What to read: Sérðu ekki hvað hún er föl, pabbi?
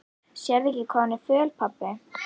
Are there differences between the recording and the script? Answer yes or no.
no